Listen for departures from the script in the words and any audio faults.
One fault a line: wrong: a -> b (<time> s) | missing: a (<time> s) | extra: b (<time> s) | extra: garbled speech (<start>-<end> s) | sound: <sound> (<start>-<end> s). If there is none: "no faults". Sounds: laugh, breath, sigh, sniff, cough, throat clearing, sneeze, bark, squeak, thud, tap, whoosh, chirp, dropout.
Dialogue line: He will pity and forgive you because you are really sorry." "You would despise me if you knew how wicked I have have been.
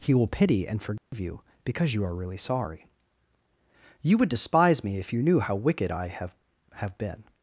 sound: dropout (1.0-1.1 s)